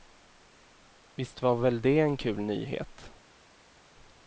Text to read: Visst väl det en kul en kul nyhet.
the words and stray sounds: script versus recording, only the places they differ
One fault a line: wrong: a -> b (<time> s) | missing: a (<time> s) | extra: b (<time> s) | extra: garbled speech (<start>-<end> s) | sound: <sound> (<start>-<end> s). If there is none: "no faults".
extra: var (1.4 s)
missing: en kul (2.4 s)